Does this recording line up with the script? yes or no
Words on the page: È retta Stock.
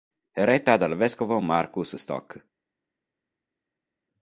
no